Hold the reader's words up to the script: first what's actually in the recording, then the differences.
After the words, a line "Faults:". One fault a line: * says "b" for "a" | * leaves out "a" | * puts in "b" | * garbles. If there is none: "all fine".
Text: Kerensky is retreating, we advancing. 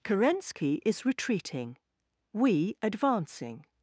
Kerensky is retreating, we advancing.
Faults:
all fine